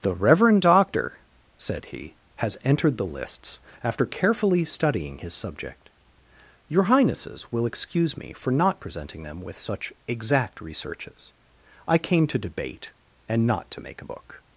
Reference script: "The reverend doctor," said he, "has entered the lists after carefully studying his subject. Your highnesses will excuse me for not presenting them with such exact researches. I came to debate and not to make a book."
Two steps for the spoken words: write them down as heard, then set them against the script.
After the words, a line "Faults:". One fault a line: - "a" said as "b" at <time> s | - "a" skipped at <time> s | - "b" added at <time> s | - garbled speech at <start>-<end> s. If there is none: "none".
"The reverend doctor," said he, "has entered the lists after carefully studying his subject. Your highnesses will excuse me for not presenting them with such exact researches. I came to debate and not to make a book."
Faults:
none